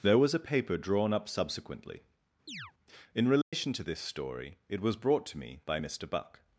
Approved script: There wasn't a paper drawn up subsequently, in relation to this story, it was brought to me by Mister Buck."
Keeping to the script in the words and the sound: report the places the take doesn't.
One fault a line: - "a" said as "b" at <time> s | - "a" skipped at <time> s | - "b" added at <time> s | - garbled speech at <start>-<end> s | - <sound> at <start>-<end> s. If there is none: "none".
- "wasn't" said as "was" at 0.2 s
- chirp at 2.5-2.7 s
- dropout at 3.4-3.5 s